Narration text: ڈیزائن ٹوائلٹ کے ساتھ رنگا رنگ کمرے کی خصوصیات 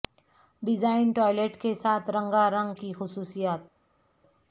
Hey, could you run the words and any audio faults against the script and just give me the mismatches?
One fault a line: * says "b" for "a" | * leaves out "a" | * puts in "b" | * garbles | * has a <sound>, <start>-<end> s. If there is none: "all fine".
* leaves out "کمرے"